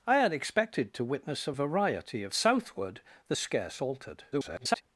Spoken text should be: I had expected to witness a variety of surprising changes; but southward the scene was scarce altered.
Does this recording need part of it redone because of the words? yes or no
yes